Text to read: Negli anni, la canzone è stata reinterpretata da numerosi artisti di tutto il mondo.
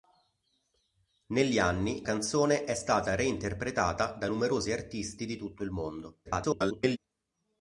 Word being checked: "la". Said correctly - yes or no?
no